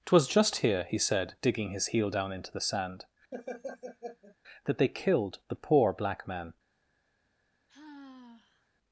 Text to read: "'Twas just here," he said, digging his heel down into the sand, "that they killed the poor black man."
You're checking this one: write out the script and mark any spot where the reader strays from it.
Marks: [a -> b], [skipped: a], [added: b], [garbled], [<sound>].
"'Twas just here," he said, digging his heel down into the sand, [laugh] "that they killed the poor black man." [sigh]